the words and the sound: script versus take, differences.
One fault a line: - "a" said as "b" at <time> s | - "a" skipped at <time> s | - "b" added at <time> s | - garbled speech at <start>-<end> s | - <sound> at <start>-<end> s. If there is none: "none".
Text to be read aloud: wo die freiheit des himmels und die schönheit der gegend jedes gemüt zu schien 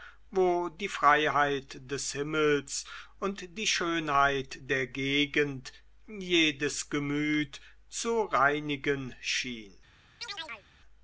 - "reinigen" added at 8.3 s
- chirp at 10.2-10.7 s